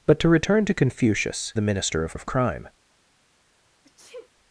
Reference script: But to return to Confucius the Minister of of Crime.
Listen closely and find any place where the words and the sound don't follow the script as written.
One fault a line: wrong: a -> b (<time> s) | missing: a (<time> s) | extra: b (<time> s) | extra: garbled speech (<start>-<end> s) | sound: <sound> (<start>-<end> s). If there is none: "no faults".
sound: sneeze (3.8-4.3 s)